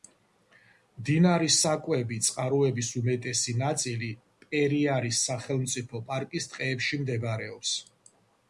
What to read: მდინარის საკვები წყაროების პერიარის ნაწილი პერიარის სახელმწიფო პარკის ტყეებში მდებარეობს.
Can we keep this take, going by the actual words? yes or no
no